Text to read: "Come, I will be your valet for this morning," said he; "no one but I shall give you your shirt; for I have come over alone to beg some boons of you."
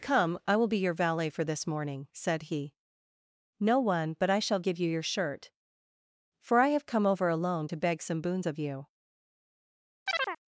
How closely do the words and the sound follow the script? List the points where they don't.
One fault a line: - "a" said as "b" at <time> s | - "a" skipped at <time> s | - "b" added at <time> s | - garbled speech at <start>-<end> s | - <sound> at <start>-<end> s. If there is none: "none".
- chirp at 10.1-10.4 s